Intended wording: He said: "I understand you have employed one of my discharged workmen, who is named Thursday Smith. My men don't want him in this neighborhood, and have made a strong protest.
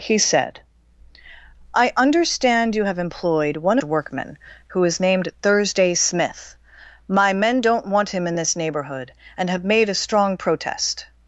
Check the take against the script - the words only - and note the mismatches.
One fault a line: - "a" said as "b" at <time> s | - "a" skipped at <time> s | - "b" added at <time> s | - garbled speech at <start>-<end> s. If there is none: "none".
- "of my discharged" skipped at 3.8 s